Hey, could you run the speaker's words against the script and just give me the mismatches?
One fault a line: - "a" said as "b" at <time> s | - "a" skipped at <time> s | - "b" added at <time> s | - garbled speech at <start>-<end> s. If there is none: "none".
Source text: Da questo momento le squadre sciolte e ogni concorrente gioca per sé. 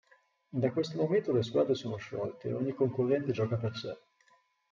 - "sono" added at 1.8 s